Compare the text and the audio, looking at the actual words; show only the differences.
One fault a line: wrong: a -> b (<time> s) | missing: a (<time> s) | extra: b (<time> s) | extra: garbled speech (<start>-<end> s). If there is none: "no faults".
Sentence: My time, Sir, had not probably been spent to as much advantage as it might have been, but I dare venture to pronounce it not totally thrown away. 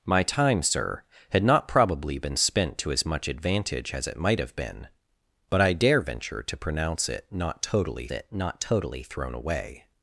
extra: it not totally (8.1 s)